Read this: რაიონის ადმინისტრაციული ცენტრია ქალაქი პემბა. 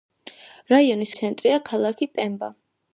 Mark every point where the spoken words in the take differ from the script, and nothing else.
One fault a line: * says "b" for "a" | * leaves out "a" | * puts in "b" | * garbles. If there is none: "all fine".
* leaves out "ადმინისტრაციული"